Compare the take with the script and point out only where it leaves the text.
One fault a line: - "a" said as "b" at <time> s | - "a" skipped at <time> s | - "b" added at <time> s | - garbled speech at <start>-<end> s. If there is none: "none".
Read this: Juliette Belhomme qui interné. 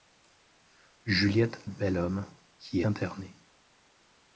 none